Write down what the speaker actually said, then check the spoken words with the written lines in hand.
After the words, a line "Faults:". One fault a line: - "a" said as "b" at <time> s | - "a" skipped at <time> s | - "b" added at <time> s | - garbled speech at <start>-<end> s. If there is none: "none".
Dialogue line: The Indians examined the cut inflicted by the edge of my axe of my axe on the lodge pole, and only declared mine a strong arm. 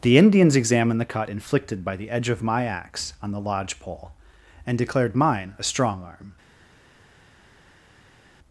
The Indians examined the cut inflicted by the edge of my axe on the lodge pole, and declared mine a strong arm.
Faults:
- "of my axe" skipped at 3.1 s
- "only" skipped at 4.8 s